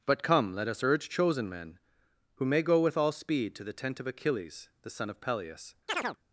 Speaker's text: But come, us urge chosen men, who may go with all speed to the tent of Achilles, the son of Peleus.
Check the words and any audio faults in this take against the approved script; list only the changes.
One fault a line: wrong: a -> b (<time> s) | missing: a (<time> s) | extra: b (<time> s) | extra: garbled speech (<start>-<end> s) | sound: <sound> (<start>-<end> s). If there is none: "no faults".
extra: let (0.5 s)
sound: chirp (5.9-6.2 s)